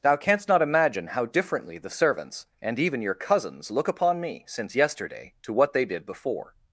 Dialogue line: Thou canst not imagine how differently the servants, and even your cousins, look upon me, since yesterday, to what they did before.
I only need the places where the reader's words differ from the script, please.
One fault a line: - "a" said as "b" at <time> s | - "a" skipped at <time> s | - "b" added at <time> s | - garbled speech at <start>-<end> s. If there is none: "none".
none